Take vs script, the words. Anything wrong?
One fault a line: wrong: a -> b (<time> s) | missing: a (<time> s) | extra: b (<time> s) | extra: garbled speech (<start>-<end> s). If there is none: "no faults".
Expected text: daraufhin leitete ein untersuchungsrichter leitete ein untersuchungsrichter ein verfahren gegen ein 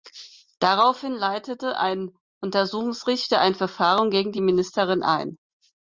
missing: leitete (3.4 s)
wrong: untersuchungsrichter ein verfahren gegen -> verfahren gegen die ministerin (3.5 s)